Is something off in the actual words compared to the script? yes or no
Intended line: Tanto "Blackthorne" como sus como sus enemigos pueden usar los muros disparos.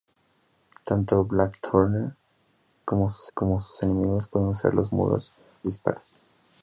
no